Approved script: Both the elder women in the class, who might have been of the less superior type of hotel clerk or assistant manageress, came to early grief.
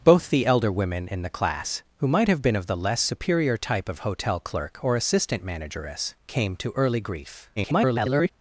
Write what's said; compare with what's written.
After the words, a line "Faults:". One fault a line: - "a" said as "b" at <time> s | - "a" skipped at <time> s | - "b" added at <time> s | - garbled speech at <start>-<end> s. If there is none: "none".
Both the elder women in the class, who might have been of the less superior type of hotel clerk or assistant manageress, came to early grief. [garbled]
Faults:
- garbled speech at 7.6-8.3 s